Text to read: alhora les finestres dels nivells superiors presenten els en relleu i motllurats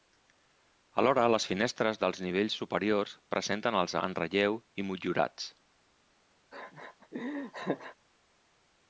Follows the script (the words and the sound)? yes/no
no